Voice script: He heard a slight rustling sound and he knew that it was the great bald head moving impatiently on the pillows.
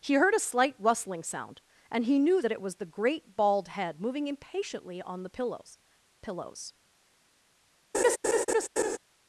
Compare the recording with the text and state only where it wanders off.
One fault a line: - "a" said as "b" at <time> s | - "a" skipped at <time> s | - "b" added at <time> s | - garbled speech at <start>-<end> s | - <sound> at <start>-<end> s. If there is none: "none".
- "pillows" added at 6.2 s
- laugh at 7.9-9.0 s